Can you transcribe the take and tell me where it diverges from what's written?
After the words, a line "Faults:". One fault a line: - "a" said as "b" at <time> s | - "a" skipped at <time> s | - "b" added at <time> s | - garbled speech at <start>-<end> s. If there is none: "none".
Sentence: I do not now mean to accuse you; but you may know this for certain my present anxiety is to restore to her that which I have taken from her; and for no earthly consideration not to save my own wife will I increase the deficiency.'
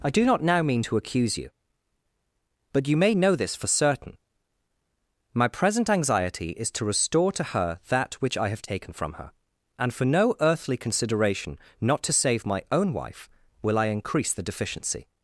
I do not now mean to accuse you; but you may know this for certain my present anxiety is to restore to her that which I have taken from her; and for no earthly consideration not to save my own wife will I increase the deficiency.'
Faults:
none